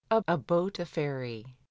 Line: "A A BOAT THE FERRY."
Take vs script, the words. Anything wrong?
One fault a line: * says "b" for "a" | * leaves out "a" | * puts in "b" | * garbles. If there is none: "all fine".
all fine